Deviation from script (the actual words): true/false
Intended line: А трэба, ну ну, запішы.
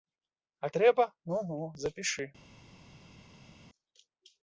false